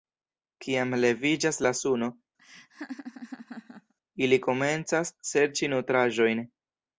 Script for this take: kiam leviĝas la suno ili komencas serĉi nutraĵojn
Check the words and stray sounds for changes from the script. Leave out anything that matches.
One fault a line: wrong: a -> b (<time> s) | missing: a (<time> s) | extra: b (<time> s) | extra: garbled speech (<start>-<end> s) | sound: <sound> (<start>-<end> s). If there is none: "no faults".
sound: laugh (2.4-3.9 s)